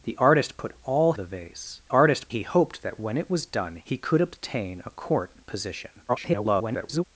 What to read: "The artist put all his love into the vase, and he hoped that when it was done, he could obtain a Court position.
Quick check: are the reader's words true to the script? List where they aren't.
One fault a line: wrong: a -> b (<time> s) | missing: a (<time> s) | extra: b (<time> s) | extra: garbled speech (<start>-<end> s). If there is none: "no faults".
missing: his love into (1.1 s)
wrong: and -> artist (1.9 s)
extra: garbled speech (6.1-7.0 s)